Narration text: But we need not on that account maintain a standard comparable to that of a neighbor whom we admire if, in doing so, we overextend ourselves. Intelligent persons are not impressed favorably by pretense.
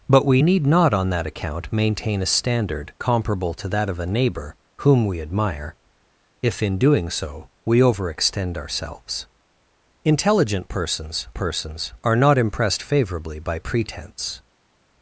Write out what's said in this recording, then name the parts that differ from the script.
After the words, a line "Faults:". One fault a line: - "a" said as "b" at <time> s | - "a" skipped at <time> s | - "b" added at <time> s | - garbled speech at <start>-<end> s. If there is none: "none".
But we need not on that account maintain a standard comparable to that of a neighbor whom we admire if, in doing so, we overextend ourselves. Intelligent persons persons are not impressed favorably by pretense.
Faults:
- "persons" added at 11.3 s